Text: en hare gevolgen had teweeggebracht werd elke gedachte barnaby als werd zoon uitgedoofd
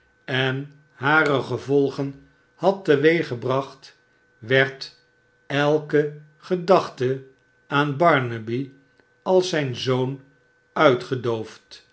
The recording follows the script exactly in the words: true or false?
false